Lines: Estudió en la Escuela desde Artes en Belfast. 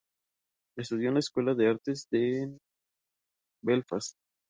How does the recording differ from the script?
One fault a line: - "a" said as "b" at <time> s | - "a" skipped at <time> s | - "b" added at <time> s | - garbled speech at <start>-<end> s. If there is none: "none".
- "desde" said as "de" at 1.5 s